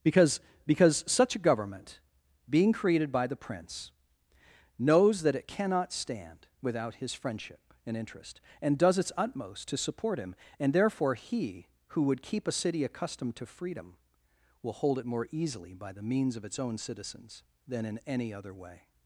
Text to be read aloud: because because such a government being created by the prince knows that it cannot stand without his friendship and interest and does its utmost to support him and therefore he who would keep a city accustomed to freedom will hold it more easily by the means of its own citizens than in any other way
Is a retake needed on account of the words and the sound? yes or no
no